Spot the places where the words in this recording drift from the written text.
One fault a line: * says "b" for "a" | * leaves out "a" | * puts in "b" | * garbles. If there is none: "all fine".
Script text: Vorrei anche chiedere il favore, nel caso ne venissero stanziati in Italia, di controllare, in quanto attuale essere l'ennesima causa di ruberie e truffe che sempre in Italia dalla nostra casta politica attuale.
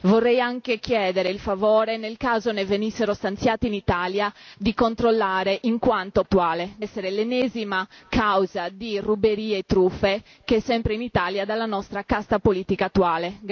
all fine